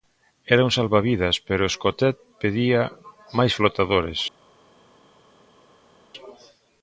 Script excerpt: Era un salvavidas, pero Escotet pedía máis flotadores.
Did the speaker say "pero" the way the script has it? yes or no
yes